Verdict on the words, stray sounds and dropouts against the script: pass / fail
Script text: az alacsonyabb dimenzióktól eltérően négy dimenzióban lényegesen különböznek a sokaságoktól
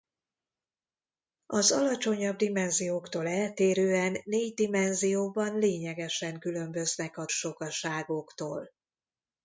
pass